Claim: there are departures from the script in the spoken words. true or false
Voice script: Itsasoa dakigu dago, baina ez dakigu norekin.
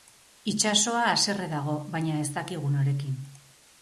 true